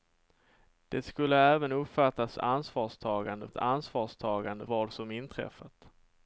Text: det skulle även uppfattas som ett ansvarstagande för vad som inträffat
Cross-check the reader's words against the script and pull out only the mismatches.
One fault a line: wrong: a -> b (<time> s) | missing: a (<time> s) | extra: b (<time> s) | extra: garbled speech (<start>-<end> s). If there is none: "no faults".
wrong: som -> ansvarstagande (2.4 s)
missing: för (4.7 s)